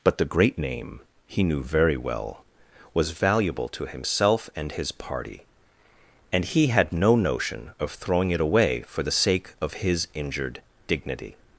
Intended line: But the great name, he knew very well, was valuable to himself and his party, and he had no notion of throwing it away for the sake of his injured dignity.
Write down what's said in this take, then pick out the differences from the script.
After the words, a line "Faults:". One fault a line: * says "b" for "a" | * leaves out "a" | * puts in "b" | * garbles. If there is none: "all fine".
But the great name, he knew very well, was valuable to himself and his party, and he had no notion of throwing it away for the sake of his injured dignity.
Faults:
all fine